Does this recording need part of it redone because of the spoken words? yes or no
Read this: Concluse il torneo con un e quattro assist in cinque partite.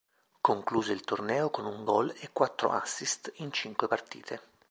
yes